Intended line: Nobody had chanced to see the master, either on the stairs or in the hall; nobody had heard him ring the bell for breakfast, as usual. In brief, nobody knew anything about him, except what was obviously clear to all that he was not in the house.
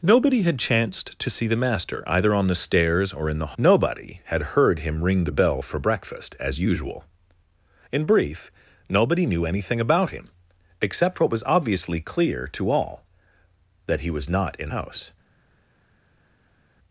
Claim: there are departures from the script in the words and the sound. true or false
true